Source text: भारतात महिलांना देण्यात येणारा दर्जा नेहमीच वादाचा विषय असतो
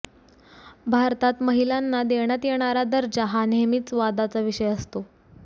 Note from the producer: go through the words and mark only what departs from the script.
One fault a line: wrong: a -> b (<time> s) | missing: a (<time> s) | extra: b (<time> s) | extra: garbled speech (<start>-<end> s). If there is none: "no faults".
extra: हा (3.2 s)